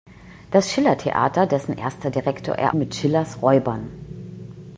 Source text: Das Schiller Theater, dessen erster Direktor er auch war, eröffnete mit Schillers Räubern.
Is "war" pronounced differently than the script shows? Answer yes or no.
yes